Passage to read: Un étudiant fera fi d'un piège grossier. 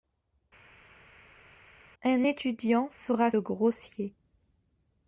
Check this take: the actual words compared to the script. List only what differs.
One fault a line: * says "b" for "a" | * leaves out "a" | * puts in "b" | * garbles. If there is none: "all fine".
* leaves out "fi d'un piège"